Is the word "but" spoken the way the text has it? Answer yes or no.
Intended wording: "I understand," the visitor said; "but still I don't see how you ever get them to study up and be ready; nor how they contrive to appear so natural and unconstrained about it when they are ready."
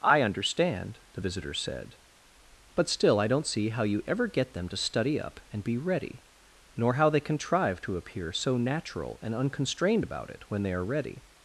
yes